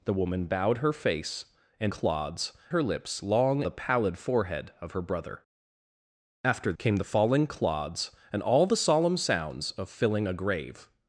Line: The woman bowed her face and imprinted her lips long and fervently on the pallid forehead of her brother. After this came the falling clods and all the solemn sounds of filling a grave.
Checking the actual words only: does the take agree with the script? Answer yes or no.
no